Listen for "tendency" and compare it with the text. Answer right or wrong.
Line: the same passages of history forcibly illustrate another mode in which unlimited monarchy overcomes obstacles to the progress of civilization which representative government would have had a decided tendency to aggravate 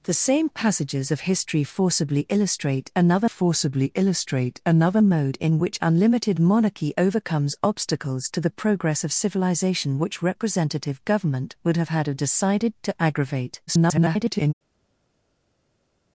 wrong